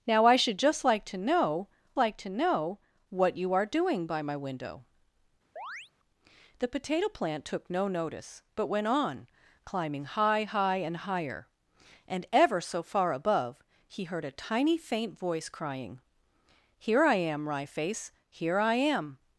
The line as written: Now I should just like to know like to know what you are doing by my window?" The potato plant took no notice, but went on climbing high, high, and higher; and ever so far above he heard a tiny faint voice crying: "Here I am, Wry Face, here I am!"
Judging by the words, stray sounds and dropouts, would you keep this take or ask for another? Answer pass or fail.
fail